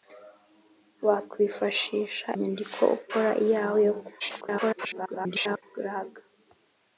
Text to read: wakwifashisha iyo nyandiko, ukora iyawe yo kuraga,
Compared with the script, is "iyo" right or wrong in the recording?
wrong